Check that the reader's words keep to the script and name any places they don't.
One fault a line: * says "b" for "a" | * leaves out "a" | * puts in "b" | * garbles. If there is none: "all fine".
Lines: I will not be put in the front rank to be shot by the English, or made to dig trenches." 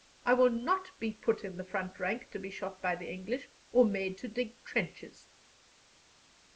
all fine